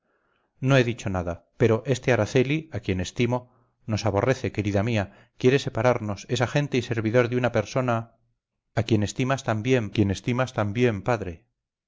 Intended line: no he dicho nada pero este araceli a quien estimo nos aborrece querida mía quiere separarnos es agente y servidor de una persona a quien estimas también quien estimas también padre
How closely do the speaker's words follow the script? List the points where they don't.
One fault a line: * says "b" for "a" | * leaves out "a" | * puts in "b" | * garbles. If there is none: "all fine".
all fine